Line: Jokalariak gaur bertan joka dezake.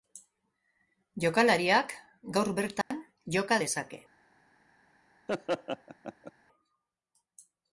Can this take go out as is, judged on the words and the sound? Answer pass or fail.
fail